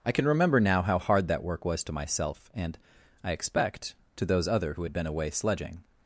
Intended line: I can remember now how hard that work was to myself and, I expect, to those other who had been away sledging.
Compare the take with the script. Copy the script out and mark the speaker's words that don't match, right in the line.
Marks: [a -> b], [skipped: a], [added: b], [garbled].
I can remember now how hard that work was to myself and, I expect, to those other who had been away sledging.